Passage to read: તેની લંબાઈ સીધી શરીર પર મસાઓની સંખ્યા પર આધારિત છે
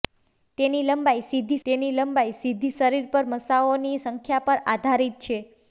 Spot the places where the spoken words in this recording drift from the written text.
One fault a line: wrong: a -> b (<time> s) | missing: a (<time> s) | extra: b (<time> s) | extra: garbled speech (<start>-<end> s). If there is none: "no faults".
extra: તેની લંબાઈ સીધી (1.6 s)